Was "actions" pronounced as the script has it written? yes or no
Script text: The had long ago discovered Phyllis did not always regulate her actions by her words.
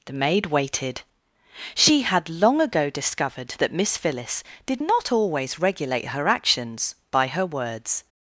yes